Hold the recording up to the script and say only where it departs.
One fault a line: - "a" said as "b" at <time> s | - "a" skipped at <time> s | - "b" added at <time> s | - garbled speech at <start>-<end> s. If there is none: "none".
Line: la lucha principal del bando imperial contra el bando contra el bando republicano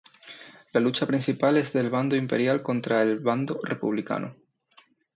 - "es" added at 1.6 s
- "contra el bando" skipped at 3.6 s